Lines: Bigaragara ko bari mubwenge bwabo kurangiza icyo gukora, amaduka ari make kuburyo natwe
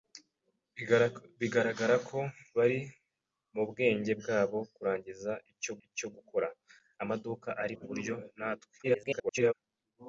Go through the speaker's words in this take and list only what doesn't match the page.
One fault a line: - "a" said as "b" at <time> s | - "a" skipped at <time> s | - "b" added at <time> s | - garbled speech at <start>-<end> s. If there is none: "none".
- "icyo" added at 5.9 s
- "make" skipped at 7.7 s
- garbled speech at 8.8-9.5 s